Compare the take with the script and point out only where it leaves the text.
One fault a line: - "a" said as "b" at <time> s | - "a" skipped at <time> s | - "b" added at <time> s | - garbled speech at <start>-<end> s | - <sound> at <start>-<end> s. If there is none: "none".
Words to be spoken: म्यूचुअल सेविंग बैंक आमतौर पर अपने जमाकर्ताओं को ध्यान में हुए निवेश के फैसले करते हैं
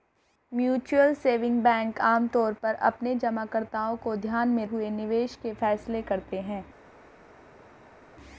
none